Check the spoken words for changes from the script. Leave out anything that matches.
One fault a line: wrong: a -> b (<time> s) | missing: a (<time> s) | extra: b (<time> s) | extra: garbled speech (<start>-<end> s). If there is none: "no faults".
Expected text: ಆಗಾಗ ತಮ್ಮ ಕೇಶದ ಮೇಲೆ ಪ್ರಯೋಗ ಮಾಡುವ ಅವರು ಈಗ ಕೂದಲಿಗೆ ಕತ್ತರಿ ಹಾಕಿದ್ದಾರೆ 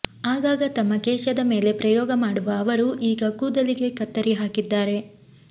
no faults